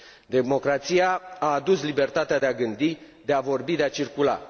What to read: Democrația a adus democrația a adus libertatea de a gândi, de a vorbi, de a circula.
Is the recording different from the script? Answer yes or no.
yes